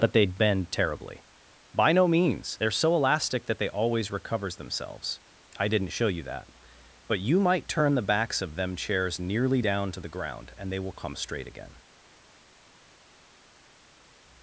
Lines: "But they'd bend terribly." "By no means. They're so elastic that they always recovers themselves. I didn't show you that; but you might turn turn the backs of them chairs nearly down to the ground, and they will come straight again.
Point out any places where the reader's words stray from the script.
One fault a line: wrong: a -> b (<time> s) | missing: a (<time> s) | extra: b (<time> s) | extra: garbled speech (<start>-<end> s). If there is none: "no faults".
missing: turn (7.9 s)